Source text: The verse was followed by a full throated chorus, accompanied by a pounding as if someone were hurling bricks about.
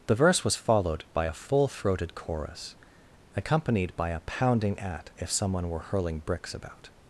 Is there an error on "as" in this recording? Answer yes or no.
yes